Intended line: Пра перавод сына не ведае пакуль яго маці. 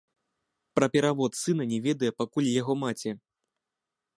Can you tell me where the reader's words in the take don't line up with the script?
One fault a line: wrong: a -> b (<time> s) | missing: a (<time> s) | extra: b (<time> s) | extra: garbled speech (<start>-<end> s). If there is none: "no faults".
no faults